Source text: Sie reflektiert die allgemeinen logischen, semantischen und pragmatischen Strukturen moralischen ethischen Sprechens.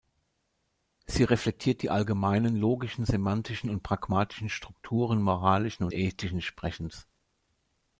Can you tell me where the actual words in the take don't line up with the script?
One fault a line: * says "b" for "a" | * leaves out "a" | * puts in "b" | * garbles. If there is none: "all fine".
all fine